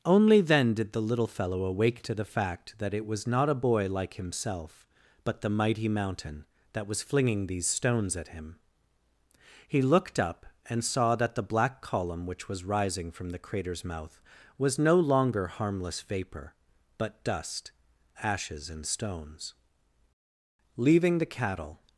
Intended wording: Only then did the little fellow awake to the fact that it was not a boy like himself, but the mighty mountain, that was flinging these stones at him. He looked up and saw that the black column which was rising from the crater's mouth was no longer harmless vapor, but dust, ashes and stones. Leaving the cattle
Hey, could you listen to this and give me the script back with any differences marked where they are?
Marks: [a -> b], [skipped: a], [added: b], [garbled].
Only then did the little fellow awake to the fact that it was not a boy like himself, but the mighty mountain, that was flinging these stones at him. He looked up and saw that the black column which was rising from the crater's mouth was no longer harmless vapor, but dust, ashes and stones. Leaving the cattle